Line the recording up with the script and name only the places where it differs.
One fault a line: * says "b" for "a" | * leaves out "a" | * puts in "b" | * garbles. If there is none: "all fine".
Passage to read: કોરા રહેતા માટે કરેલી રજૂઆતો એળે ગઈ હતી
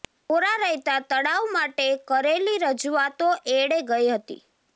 * puts in "તળાવ"